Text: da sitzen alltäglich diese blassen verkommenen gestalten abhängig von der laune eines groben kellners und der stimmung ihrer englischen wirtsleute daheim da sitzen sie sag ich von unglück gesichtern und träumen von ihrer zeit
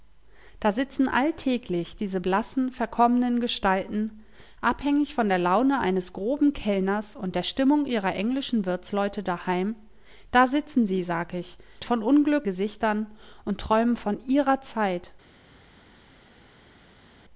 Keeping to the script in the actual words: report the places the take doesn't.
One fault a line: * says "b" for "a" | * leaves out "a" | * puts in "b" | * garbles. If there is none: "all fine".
all fine